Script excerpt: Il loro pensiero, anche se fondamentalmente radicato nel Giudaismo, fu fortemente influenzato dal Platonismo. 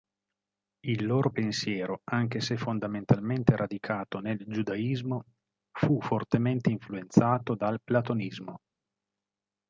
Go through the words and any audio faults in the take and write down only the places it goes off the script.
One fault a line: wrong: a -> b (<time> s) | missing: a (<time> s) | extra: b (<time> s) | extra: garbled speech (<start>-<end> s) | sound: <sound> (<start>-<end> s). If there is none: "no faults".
no faults